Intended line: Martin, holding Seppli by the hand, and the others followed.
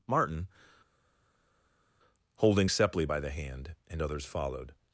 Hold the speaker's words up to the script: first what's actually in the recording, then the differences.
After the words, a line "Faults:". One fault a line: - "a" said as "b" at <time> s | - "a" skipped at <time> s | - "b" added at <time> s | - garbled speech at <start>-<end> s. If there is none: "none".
Martin, holding Seppli by the hand, and others followed.
Faults:
- "the" skipped at 4.0 s